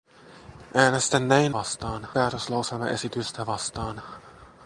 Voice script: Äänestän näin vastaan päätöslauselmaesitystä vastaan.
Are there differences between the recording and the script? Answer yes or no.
no